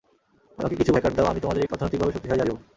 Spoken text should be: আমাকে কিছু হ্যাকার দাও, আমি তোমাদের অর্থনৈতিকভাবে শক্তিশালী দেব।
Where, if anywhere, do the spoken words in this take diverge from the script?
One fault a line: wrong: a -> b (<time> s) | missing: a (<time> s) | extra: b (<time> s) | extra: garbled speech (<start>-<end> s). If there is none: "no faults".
no faults